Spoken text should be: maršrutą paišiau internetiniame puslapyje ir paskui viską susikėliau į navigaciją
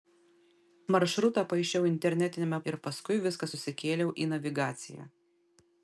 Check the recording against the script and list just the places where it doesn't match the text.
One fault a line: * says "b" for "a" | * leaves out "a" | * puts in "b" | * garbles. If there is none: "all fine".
* leaves out "puslapyje"